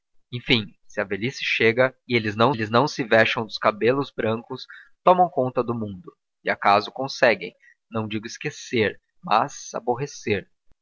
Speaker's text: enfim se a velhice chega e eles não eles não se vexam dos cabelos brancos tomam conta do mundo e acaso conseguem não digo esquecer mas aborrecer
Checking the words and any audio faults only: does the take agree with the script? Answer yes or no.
yes